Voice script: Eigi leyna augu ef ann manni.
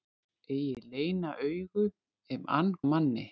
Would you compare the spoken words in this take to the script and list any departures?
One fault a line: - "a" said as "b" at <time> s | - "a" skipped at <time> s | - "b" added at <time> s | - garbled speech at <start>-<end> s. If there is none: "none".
none